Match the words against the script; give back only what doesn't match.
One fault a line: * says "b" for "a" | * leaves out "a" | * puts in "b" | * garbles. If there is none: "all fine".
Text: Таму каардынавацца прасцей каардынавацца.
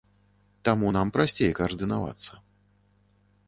* says "нам" for "каардынавацца"